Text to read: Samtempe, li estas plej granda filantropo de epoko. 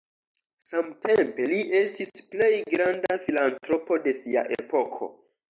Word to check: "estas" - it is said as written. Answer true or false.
false